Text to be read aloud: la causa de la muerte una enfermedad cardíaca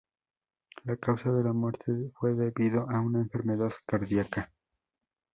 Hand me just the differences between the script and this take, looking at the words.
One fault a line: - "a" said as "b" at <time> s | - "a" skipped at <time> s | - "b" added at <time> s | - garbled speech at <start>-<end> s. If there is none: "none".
- "fue debido a" added at 2.1 s